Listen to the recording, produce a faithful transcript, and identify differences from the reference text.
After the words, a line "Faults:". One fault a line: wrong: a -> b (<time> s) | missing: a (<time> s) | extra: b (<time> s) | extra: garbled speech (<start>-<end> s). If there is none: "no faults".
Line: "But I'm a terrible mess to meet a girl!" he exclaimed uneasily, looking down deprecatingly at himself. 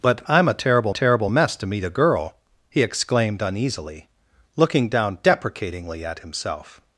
"But I'm a terrible terrible mess to meet a girl!" he exclaimed uneasily, looking down deprecatingly at himself.
Faults:
extra: terrible (0.9 s)